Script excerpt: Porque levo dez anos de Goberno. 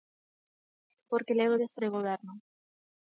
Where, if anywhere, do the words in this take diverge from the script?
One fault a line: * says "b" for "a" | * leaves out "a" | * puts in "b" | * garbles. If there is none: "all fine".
* leaves out "anos"